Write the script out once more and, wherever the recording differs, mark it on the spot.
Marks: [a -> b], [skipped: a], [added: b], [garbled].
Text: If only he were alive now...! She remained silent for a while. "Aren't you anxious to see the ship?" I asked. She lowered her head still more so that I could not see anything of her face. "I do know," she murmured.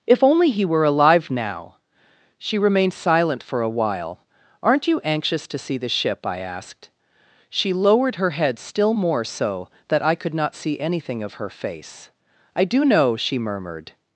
If only he were alive now...! She remained silent for a while. "Aren't you anxious to see the ship?" I asked. She lowered her head still more so that I could not see anything of her face. "I do know," she murmured.